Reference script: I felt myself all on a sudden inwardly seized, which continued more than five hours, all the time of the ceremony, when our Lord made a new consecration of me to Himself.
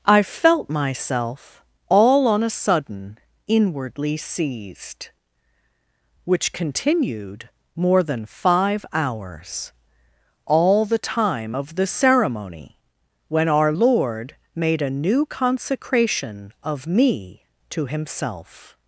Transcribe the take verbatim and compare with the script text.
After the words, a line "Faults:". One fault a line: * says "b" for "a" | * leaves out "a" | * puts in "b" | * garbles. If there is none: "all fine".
I felt myself all on a sudden inwardly seized, which continued more than five hours, all the time of the ceremony, when our Lord made a new consecration of me to Himself.
Faults:
all fine